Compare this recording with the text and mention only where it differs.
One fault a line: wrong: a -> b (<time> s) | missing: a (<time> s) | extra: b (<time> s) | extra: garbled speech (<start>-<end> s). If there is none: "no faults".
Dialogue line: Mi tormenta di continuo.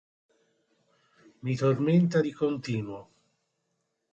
no faults